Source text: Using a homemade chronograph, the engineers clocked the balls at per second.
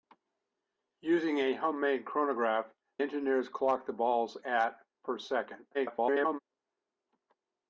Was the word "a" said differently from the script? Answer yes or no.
no